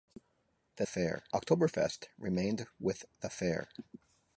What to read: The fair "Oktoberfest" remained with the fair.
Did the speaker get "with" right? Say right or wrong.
right